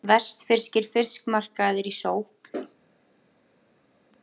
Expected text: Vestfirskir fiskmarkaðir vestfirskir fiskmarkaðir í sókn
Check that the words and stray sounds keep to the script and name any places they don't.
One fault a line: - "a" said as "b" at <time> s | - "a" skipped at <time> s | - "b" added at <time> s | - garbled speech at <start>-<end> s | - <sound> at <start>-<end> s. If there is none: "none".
- "vestfirskir fiskmarkaðir" skipped at 1.9 s